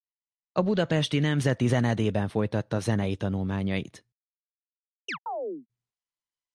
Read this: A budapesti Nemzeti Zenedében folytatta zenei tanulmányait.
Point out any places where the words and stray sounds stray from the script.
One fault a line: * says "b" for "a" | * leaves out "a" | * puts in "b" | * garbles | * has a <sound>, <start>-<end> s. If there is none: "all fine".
* has a chirp, 5.1-5.7 s